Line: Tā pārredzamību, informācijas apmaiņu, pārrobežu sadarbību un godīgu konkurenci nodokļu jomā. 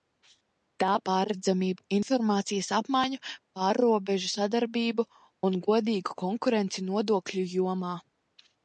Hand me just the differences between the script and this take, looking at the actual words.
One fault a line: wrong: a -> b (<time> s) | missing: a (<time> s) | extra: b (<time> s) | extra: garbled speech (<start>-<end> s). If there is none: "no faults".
no faults